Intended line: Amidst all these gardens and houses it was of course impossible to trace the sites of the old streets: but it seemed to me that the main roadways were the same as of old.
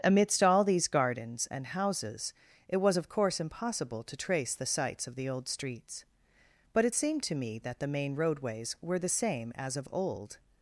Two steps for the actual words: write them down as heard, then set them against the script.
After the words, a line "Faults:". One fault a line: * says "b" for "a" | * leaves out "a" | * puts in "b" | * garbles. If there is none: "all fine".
Amidst all these gardens and houses it was of course impossible to trace the sites of the old streets: but it seemed to me that the main roadways were the same as of old.
Faults:
all fine